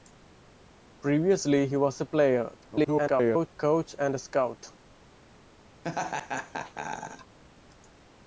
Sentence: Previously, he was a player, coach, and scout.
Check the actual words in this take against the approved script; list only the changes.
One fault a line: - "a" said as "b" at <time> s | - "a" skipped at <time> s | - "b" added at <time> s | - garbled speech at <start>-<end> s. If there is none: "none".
- garbled speech at 2.6-3.5 s